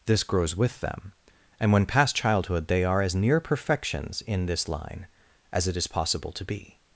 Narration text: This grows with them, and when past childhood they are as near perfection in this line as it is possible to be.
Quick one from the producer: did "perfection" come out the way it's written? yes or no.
no